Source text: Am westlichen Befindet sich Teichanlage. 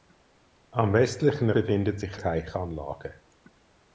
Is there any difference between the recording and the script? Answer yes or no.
no